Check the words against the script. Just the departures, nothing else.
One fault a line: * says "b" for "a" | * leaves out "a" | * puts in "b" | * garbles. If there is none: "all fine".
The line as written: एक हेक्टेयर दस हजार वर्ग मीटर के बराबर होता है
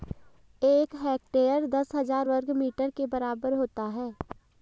all fine